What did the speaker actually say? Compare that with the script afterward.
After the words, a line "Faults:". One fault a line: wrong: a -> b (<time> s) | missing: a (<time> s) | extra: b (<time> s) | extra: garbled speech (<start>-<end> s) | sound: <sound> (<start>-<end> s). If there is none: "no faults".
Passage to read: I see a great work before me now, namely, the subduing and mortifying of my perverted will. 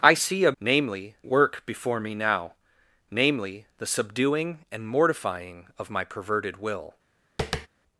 I see a namely work before me now, namely, the subduing and mortifying of my perverted will.
Faults:
wrong: great -> namely (0.6 s)
sound: tap (7.4-7.7 s)